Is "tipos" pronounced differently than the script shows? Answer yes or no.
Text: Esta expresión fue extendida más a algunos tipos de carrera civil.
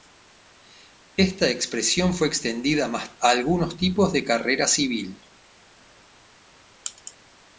no